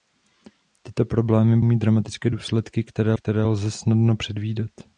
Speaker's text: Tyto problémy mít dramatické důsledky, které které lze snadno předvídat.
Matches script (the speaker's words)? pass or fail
pass